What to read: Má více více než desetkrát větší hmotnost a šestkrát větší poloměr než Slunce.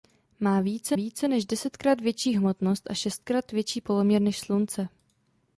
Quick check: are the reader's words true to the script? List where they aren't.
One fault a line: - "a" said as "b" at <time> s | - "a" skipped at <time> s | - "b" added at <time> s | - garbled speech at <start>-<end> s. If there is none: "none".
none